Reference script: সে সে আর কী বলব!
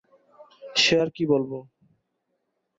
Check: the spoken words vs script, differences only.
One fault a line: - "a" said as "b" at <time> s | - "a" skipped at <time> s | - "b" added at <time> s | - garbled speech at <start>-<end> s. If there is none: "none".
- "সে" skipped at 0.9 s